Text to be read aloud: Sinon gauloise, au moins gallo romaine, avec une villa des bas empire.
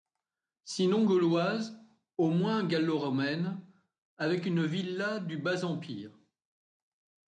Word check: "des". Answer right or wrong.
wrong